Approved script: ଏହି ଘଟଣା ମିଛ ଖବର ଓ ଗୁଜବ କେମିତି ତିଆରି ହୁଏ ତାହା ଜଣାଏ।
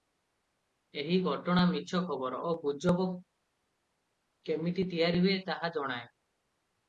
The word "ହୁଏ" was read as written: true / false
true